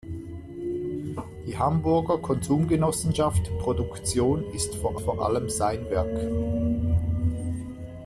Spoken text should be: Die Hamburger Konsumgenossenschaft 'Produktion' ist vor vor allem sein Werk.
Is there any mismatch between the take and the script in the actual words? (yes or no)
no